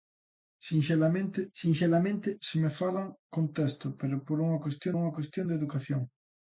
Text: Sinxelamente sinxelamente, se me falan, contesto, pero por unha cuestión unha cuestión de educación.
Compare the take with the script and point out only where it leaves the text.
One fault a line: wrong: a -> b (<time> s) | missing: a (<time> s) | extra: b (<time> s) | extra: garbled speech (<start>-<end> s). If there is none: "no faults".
no faults